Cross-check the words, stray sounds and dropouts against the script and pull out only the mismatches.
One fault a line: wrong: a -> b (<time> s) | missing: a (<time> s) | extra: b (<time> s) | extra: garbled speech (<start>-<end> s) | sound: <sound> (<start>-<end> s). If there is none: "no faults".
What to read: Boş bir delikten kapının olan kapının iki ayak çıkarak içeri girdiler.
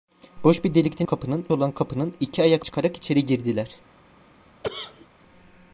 sound: cough (4.6-5.1 s)